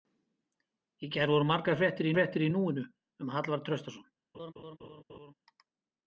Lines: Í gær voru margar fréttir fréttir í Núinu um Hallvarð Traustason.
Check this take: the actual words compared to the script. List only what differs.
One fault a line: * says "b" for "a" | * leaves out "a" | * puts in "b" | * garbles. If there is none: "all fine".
all fine